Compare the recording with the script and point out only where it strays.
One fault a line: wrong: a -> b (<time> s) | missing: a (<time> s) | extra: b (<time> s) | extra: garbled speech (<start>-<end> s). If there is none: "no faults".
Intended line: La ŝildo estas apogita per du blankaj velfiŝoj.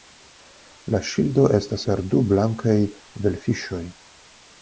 missing: apogita (1.9 s)